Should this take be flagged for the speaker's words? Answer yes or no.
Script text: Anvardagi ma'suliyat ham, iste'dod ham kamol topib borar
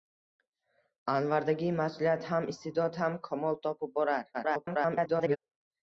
yes